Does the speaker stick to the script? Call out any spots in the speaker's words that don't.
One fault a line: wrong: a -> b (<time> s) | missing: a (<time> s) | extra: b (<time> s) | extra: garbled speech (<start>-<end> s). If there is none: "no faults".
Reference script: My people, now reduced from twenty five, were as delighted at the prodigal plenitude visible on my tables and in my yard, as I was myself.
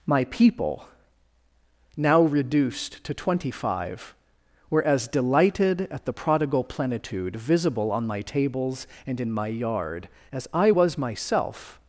wrong: from -> to (3.0 s)